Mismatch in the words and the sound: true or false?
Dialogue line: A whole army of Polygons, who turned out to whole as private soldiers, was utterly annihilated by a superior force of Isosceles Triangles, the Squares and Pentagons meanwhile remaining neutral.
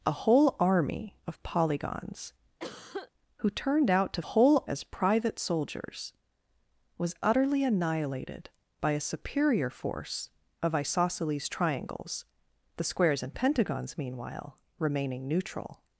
true